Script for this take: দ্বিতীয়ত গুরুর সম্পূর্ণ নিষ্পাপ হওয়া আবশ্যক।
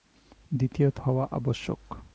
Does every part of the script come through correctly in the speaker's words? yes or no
no